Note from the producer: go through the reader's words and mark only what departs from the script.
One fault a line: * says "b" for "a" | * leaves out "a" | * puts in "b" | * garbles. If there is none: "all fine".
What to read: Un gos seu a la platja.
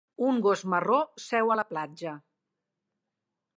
* puts in "marró"